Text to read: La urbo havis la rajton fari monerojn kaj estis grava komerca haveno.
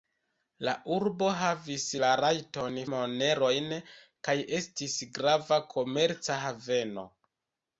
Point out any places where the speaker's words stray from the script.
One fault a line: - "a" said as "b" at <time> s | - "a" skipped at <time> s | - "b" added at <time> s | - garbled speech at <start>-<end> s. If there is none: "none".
- "fari" skipped at 2.8 s